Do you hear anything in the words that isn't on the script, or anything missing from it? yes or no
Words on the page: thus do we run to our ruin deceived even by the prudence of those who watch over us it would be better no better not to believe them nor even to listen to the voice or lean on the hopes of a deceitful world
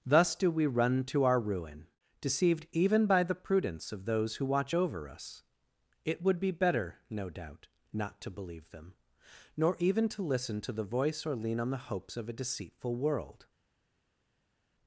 yes